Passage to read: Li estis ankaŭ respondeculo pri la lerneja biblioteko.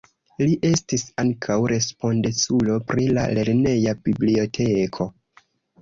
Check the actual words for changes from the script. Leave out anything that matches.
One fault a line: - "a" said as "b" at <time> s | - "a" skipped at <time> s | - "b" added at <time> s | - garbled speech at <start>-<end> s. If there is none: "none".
none